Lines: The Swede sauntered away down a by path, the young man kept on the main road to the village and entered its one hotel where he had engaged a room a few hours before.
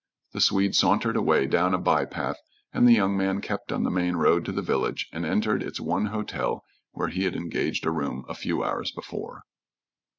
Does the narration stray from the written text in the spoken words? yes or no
yes